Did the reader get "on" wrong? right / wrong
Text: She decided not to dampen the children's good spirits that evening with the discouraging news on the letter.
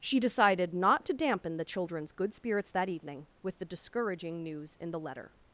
wrong